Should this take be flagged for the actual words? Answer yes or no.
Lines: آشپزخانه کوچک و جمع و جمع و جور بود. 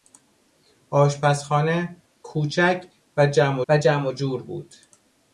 no